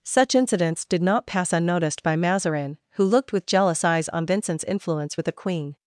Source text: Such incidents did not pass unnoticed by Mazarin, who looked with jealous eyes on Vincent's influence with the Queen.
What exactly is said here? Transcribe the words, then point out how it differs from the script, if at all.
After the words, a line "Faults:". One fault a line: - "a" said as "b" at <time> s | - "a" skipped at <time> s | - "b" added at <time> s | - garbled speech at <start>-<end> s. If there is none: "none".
Such incidents did not pass unnoticed by Mazarin, who looked with jealous eyes on Vincent's influence with the Queen.
Faults:
none